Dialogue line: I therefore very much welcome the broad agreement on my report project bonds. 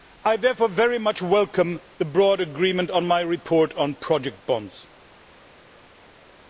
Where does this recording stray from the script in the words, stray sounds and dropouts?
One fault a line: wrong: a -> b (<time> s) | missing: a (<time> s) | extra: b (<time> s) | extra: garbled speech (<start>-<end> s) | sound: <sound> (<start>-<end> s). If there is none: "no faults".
extra: on (3.7 s)